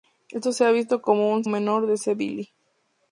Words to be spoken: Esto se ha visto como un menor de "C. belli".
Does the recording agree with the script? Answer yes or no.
yes